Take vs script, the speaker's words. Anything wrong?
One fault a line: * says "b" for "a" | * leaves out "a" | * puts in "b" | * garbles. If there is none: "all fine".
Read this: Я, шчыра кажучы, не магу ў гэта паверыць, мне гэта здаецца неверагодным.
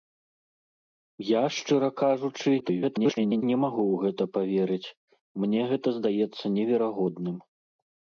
* garbles